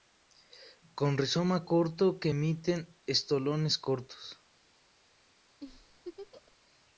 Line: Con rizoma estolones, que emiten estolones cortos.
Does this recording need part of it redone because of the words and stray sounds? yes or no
yes